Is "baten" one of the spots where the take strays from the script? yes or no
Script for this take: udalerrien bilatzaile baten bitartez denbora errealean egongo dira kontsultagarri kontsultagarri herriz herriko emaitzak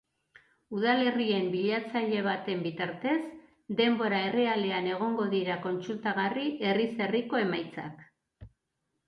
no